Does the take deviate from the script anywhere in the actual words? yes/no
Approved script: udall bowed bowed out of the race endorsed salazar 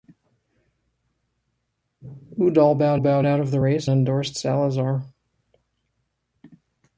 no